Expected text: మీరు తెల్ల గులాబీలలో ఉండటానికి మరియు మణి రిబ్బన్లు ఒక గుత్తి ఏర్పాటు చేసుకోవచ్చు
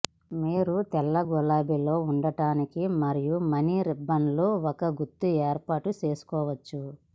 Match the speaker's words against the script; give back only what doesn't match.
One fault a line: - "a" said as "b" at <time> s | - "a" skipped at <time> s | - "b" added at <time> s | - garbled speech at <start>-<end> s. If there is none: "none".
none